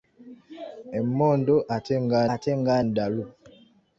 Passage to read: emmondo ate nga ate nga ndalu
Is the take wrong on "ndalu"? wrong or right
right